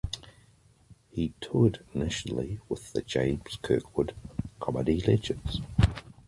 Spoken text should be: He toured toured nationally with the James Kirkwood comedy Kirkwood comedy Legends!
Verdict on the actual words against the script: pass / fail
fail